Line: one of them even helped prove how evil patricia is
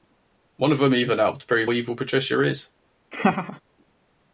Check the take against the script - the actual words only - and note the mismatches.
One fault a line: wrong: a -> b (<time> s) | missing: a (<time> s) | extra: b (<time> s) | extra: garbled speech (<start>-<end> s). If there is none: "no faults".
missing: how (1.7 s)